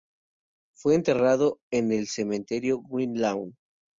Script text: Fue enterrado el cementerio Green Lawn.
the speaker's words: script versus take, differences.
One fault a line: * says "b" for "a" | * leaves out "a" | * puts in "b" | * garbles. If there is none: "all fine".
* puts in "en"